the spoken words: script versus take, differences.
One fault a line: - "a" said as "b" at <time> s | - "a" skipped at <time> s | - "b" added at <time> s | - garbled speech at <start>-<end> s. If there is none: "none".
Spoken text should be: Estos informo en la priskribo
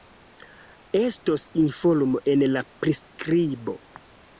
none